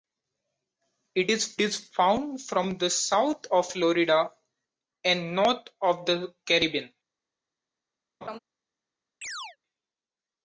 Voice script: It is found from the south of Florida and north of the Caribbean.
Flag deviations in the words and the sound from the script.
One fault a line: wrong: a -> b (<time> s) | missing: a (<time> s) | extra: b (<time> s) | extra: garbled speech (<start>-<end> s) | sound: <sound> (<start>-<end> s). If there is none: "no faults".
extra: is (1.6 s)
sound: laugh (8.2-8.4 s)
sound: chirp (9.2-9.6 s)